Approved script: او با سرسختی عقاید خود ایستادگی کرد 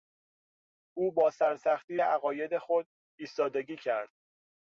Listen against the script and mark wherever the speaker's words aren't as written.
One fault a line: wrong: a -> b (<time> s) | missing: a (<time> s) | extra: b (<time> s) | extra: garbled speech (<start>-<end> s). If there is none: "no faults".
no faults